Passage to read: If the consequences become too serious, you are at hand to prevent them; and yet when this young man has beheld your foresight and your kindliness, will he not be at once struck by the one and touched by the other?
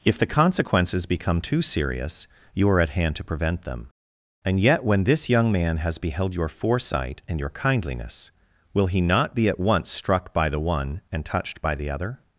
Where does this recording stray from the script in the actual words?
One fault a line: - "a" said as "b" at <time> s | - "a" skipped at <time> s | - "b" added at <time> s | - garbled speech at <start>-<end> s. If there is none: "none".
none